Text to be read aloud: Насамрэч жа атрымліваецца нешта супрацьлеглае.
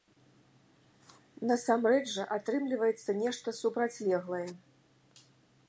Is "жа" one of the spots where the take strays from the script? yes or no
no